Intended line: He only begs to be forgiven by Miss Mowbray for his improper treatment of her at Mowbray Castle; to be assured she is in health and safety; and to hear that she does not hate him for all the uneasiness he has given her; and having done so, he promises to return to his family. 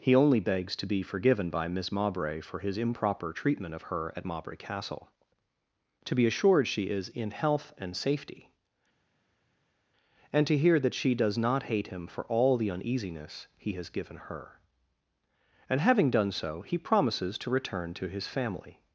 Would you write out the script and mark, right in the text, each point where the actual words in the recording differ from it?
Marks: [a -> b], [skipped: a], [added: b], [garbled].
He only begs to be forgiven by Miss Mowbray for his improper treatment of her at Mowbray Castle; to be assured she is in health and safety; and to hear that she does not hate him for all the uneasiness he has given her; and having done so, he promises to return to his family.